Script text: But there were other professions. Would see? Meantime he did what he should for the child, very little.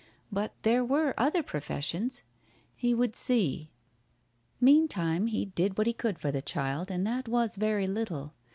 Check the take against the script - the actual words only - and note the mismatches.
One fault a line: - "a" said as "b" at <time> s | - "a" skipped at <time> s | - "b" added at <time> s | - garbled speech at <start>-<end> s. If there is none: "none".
- "He" added at 2.8 s
- "should" said as "could" at 5.9 s
- "and that was" added at 6.9 s